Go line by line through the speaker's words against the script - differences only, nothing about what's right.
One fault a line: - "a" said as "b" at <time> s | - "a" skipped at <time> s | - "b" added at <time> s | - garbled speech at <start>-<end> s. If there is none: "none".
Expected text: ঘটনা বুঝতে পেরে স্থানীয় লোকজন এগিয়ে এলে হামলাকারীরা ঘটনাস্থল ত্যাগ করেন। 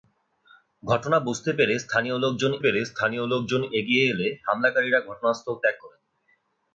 - "পেরে স্থানীয় লোকজন" added at 2.6 s